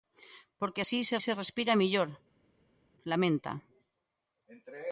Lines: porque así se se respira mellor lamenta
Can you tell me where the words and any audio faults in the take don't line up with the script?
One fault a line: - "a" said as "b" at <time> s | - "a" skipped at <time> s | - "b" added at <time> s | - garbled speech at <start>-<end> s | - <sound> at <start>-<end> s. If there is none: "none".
none